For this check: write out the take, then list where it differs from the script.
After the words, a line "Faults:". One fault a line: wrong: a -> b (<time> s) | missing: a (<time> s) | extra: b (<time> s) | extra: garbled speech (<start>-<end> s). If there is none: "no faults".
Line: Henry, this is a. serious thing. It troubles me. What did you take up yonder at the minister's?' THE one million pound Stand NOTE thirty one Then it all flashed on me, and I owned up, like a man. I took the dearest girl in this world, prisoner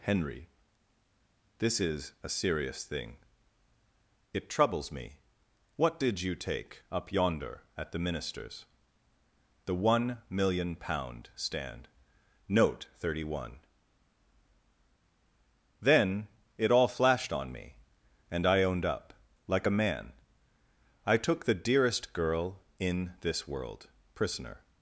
Henry, this is a. serious thing. It troubles me. What did you take up yonder at the minister's?' THE one million pound Stand NOTE thirty one Then it all flashed on me, and I owned up, like a man. I took the dearest girl in this world, prisoner
Faults:
no faults